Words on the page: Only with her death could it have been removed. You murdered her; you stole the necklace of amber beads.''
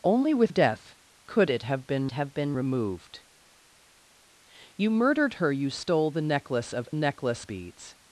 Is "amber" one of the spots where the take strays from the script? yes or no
yes